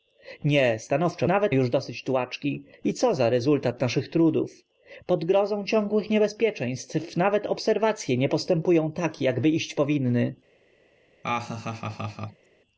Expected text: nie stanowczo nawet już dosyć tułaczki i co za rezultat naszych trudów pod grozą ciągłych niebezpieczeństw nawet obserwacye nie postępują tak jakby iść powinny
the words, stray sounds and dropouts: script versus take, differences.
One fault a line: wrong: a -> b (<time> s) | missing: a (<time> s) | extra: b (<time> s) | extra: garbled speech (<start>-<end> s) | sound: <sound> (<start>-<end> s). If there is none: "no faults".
sound: laugh (11.2-12.5 s)